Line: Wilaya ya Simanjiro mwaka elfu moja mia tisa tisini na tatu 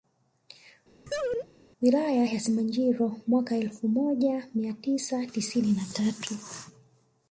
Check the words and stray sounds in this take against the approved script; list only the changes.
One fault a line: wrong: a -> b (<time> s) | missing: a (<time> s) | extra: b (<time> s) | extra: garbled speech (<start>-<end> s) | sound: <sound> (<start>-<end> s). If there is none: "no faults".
sound: laugh (1.1-1.5 s)